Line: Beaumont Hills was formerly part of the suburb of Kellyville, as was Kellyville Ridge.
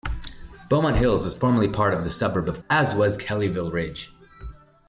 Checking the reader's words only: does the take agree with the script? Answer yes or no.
no